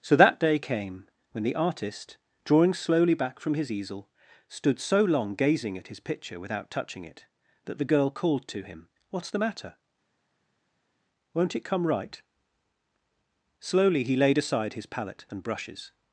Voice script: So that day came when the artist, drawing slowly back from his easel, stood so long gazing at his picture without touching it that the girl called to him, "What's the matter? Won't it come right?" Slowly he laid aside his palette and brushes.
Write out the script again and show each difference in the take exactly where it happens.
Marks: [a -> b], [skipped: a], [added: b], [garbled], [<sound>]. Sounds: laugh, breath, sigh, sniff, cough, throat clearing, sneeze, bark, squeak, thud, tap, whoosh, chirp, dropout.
So that day came when the artist, drawing slowly back from his easel, stood so long gazing at his picture without touching it that the girl called to him, "What's the matter? Won't it come right?" Slowly he laid aside his palette and brushes.